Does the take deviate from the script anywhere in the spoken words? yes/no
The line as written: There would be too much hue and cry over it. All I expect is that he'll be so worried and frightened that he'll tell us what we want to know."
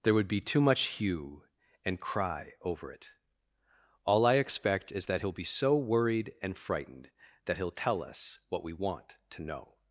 no